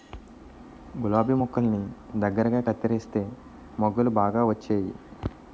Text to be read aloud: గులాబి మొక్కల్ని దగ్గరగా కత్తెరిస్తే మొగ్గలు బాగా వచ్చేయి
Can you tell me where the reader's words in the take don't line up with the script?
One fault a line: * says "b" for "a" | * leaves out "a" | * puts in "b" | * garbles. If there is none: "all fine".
all fine